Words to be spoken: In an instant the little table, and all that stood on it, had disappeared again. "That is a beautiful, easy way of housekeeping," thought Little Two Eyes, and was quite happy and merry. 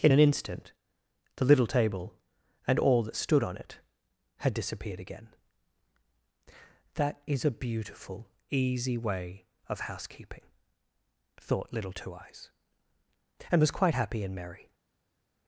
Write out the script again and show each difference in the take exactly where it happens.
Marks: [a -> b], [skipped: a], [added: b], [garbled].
In an instant the little table, and all that stood on it, had disappeared again. "That is a beautiful, easy way of housekeeping," thought Little Two Eyes, and was quite happy and merry.